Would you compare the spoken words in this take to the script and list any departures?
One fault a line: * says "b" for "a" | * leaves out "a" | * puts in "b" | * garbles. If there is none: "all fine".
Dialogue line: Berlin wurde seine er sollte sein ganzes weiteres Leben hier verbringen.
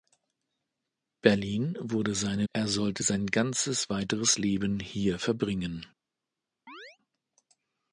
all fine